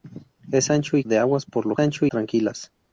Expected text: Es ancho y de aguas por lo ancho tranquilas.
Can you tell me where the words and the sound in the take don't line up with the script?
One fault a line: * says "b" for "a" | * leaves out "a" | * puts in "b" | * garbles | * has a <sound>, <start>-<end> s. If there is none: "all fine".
all fine